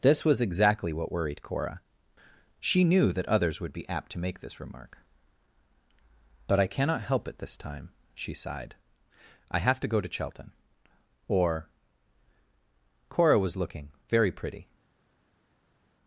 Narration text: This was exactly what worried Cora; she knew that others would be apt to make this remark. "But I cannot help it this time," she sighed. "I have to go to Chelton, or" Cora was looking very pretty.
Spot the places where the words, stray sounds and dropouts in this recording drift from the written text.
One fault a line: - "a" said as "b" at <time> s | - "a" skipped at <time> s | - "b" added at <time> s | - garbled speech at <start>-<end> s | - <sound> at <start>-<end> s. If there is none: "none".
none